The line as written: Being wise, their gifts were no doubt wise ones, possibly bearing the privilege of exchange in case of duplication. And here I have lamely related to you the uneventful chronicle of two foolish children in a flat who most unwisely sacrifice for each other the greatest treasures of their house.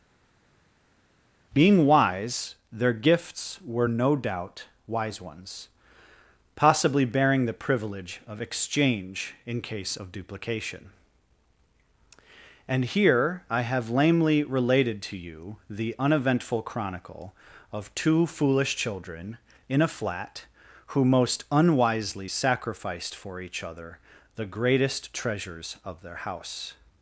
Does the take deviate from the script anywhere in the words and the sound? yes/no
yes